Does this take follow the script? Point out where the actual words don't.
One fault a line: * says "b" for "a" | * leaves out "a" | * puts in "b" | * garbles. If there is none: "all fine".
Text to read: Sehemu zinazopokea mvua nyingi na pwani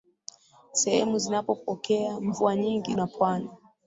all fine